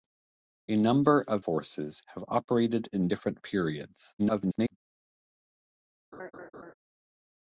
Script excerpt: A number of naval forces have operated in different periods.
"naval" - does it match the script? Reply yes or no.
no